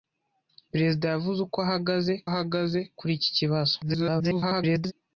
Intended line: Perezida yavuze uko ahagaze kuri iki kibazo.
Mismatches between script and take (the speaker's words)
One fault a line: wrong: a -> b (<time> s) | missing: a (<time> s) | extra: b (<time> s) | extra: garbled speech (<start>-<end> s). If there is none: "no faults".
extra: ahagaze (2.3 s)
extra: garbled speech (3.8-4.9 s)